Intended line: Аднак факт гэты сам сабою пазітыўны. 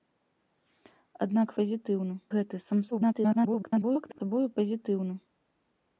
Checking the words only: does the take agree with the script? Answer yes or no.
no